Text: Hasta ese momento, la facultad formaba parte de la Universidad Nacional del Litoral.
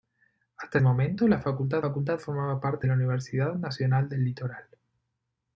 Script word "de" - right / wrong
wrong